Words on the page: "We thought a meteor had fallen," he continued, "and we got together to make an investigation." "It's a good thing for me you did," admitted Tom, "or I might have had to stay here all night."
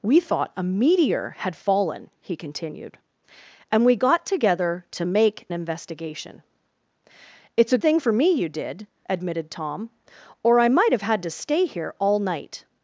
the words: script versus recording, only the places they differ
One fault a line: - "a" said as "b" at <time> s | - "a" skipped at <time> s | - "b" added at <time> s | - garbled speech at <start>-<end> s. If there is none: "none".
- "an" skipped at 5.5 s
- "good" skipped at 7.8 s